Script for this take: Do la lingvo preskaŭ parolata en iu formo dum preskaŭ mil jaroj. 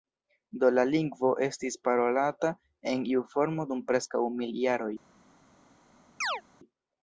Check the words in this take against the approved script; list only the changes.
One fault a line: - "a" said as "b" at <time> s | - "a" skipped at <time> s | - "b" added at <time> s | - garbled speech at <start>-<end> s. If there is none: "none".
- "preskaŭ" said as "estis" at 1.5 s